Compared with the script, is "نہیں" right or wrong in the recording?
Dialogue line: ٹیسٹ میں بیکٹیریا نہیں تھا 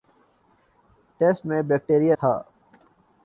wrong